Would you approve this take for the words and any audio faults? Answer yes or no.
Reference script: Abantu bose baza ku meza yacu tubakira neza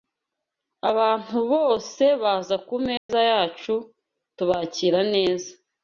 no